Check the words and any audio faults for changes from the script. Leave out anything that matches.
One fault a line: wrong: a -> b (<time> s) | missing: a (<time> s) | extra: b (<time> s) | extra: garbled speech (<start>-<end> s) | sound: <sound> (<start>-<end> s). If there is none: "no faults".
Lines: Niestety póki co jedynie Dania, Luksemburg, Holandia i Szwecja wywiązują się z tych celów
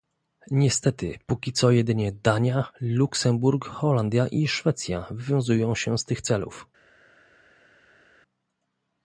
no faults